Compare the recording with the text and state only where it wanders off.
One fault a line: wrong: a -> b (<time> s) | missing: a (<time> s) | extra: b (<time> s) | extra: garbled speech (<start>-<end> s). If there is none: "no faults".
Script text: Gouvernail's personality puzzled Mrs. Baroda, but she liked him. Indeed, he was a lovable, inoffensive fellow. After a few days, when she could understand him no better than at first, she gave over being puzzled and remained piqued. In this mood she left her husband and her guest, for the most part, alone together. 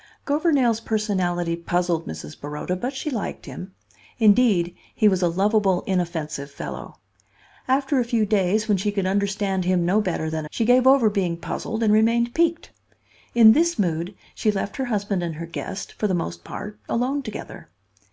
missing: at first (10.5 s)